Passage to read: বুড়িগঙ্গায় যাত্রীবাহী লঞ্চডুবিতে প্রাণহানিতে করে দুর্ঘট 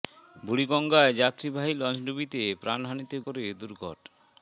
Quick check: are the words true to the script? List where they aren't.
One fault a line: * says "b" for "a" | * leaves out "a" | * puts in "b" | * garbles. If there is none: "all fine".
all fine